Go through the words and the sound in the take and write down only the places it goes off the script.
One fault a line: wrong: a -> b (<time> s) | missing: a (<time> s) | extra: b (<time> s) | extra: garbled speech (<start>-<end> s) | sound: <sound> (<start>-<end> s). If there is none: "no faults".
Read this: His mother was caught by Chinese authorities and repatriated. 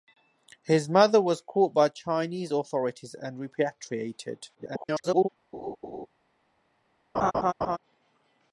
extra: garbled speech (4.5-5.3 s)
sound: laugh (5.5-6.1 s)
sound: laugh (7.1-7.8 s)